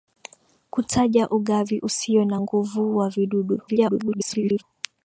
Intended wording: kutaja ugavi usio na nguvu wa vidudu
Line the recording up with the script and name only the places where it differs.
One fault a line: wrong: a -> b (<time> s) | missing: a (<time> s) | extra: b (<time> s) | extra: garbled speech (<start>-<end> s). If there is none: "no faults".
extra: garbled speech (3.7-4.6 s)